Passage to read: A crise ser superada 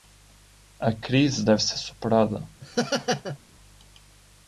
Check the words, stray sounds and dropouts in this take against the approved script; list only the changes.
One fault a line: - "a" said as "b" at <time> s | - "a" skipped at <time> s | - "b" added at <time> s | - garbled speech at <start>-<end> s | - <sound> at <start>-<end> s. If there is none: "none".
- "deve" added at 1.4 s
- laugh at 2.6-3.4 s